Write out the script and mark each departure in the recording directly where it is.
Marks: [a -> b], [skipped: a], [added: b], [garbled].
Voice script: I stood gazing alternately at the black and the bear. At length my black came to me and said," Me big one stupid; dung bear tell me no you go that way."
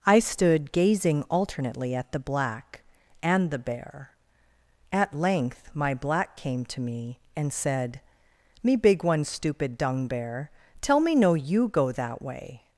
I stood gazing alternately at the black and the bear. At length my black came to me and said," Me big one stupid; dung bear tell me no you go that way."